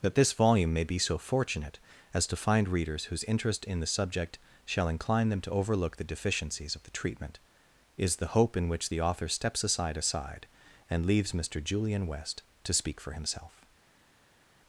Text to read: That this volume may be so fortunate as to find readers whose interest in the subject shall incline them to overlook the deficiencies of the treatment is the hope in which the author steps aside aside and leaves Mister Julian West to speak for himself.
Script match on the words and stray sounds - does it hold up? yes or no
yes